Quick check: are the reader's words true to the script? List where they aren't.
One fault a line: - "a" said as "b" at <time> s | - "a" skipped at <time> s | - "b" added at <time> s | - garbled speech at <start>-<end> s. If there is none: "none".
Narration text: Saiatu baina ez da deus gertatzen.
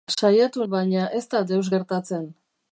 none